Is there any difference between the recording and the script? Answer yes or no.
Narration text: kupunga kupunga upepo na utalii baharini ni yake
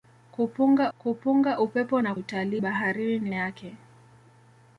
no